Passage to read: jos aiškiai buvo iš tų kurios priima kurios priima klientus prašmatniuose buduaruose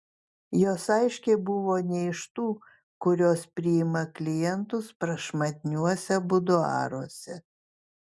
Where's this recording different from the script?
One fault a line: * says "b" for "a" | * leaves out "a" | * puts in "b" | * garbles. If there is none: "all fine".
* puts in "ne"
* leaves out "kurios priima"